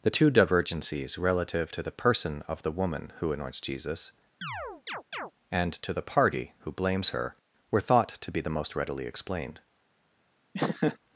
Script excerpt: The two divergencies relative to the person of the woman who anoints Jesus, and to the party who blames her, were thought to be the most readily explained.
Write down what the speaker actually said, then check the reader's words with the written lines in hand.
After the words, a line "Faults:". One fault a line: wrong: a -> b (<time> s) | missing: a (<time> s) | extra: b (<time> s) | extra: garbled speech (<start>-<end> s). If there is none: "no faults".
The two divergencies relative to the person of the woman who anoints Jesus, and to the party who blames her, were thought to be the most readily explained.
Faults:
no faults